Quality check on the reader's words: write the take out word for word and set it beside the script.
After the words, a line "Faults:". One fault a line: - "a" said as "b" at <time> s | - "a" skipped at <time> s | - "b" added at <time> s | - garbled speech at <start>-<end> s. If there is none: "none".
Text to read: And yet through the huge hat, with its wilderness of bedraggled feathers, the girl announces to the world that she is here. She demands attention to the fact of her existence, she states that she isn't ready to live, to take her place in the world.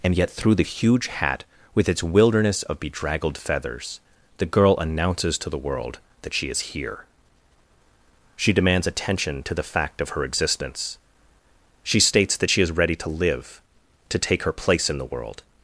And yet through the huge hat, with its wilderness of bedraggled feathers, the girl announces to the world that she is here. She demands attention to the fact of her existence, she states that she is ready to live, to take her place in the world.
Faults:
- "isn't" said as "is" at 12.6 s